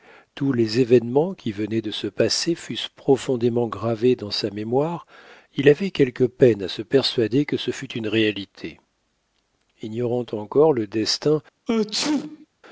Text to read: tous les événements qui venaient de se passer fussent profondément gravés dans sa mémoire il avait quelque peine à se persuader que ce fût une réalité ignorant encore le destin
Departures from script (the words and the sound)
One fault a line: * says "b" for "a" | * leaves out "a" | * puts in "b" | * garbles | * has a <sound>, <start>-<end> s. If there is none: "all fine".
* has a sneeze, 11.7-12.5 s